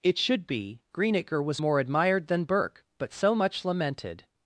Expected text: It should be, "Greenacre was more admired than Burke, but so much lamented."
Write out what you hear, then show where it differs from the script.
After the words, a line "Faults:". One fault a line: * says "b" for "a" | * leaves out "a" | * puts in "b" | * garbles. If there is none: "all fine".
It should be, "Greenacre was more admired than Burke, but so much lamented."
Faults:
all fine